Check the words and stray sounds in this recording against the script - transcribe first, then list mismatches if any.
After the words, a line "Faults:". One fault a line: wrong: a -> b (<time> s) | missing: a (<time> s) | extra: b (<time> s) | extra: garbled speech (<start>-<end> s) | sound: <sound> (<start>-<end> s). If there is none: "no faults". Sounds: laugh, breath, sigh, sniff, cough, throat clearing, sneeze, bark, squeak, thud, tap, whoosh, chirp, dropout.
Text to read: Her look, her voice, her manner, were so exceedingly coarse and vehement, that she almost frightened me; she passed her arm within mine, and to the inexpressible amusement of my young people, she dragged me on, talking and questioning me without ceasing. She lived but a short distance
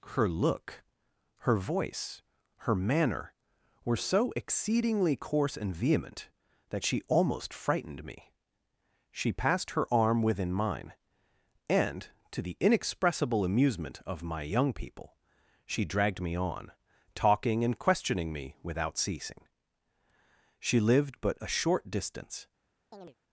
Her look, her voice, her manner, were so exceedingly coarse and vehement, that she almost frightened me; she passed her arm within mine, and to the inexpressible amusement of my young people, she dragged me on, talking and questioning me without ceasing. She lived but a short distance
Faults:
sound: chirp (22.9-23.2 s)